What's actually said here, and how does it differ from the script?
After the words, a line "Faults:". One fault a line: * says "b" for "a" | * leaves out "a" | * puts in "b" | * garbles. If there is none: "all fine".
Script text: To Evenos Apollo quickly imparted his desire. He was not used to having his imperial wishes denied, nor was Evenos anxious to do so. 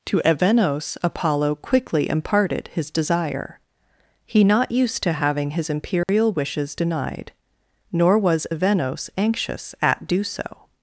To Evenos Apollo quickly imparted his desire. He not used to having his imperial wishes denied, nor was Evenos anxious at do so.
Faults:
* leaves out "was"
* says "at" for "to"